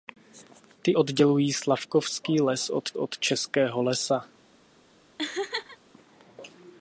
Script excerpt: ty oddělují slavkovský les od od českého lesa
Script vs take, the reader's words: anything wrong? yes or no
no